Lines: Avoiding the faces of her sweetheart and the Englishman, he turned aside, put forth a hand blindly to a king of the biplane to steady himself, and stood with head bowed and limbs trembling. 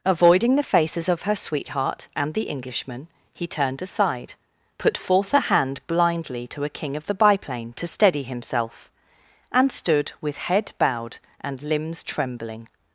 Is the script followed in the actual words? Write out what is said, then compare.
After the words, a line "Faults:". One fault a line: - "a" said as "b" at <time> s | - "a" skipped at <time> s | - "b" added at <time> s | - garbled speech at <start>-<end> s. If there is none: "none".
Avoiding the faces of her sweetheart and the Englishman, he turned aside, put forth a hand blindly to a king of the biplane to steady himself, and stood with head bowed and limbs trembling.
Faults:
none